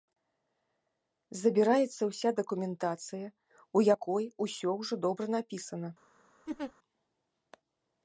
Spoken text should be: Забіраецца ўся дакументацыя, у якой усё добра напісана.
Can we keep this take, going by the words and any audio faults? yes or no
no